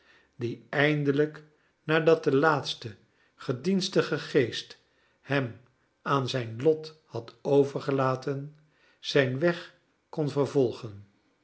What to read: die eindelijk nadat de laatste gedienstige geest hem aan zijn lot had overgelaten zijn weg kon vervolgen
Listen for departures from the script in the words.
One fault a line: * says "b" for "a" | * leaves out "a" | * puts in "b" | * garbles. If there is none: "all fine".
all fine